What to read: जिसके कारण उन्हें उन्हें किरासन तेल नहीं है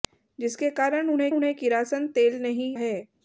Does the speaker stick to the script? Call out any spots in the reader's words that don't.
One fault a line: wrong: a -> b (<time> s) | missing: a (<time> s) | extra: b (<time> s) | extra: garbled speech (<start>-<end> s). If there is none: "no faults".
no faults